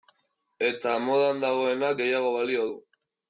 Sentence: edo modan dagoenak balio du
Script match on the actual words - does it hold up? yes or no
no